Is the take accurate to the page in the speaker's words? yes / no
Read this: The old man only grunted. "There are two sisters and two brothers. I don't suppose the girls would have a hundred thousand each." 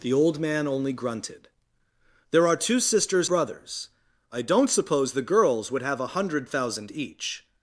no